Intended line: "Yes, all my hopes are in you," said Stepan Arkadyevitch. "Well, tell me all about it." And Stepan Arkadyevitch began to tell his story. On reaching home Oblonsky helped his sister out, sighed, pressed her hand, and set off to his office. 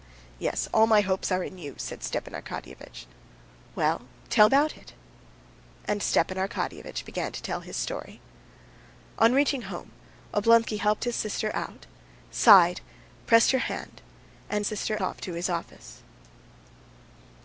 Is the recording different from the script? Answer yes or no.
yes